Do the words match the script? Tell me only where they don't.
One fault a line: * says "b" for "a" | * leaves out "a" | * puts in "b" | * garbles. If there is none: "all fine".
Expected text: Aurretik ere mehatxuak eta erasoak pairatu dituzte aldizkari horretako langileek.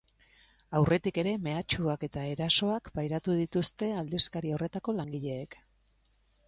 all fine